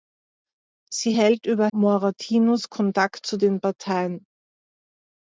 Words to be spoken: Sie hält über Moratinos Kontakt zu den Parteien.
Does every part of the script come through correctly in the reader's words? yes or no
yes